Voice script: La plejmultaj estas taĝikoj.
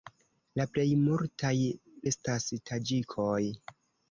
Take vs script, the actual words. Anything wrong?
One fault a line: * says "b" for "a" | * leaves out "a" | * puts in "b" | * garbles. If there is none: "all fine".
all fine